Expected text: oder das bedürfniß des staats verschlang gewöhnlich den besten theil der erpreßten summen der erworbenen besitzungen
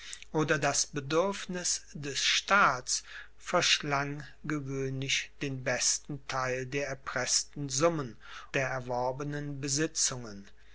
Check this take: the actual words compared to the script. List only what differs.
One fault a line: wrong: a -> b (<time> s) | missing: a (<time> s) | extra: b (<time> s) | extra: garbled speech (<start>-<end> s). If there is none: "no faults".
no faults